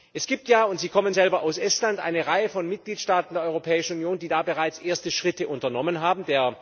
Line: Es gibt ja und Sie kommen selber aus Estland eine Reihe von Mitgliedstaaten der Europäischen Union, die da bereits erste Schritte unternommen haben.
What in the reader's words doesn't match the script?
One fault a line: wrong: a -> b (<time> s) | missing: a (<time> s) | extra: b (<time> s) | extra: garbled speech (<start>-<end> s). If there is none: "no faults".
no faults